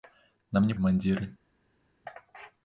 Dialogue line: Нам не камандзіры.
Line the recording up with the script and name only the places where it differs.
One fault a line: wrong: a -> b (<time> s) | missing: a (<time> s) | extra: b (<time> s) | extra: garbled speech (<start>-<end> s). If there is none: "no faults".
no faults